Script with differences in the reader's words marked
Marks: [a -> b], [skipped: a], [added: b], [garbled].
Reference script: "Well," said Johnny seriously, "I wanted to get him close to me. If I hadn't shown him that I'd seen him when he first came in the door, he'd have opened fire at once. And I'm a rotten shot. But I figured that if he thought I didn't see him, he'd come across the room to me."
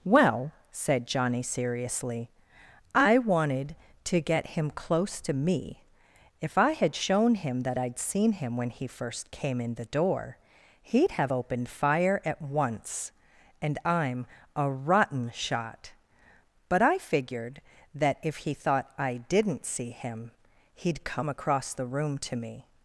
"Well," said Johnny seriously, "I wanted to get him close to me. If I [hadn't -> had] shown him that I'd seen him when he first came in the door, he'd have opened fire at once. And I'm a rotten shot. But I figured that if he thought I didn't see him, he'd come across the room to me."